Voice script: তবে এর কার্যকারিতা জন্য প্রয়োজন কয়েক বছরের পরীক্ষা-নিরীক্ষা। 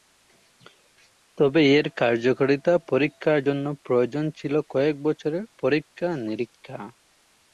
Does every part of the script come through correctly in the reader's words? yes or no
no